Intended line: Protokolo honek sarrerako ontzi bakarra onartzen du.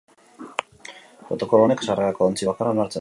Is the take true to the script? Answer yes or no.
yes